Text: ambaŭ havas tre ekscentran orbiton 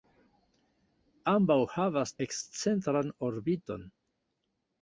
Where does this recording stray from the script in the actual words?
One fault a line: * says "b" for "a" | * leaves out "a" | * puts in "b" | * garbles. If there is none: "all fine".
* leaves out "tre"